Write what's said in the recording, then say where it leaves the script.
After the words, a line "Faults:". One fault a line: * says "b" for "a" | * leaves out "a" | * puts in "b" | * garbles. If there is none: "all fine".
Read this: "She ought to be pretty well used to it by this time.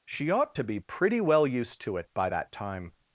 "She ought to be pretty well used to it by that time.
Faults:
* says "that" for "this"